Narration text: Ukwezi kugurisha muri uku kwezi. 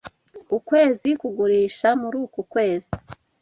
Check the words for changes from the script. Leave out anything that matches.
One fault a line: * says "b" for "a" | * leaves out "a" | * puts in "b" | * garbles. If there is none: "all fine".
all fine